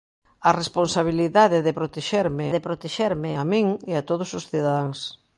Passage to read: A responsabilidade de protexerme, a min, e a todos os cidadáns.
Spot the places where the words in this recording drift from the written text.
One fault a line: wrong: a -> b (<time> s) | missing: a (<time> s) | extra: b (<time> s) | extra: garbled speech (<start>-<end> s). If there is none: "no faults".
extra: de protexerme (2.5 s)